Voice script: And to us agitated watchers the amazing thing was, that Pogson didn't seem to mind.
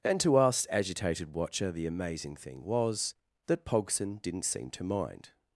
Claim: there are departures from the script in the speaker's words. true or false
true